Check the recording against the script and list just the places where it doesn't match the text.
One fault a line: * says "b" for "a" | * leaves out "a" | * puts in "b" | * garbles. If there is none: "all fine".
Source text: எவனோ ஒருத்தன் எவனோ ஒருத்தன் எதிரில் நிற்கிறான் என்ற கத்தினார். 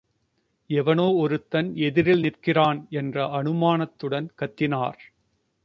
* leaves out "எவனோ ஒருத்தன்"
* puts in "அனுமானத்துடன்"